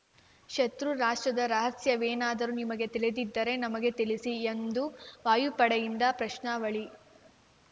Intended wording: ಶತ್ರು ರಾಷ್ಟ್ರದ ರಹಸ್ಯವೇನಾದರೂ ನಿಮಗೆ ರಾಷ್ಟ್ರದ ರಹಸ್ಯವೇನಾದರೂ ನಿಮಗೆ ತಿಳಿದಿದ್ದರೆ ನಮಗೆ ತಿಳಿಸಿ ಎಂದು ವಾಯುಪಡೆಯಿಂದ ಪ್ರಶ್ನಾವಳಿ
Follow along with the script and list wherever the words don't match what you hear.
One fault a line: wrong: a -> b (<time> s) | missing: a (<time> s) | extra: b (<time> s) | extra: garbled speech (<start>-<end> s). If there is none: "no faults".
missing: ರಾಷ್ಟ್ರದ ರಹಸ್ಯವೇನಾದರೂ ನಿಮಗೆ (2.9 s)